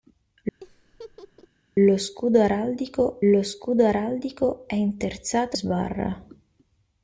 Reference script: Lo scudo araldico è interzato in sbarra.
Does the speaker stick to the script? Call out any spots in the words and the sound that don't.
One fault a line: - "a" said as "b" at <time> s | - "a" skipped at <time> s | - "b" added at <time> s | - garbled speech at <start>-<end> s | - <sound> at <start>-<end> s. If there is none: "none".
- laugh at 0.6-1.5 s
- "lo scudo araldico" added at 3.3 s
- "in" skipped at 5.6 s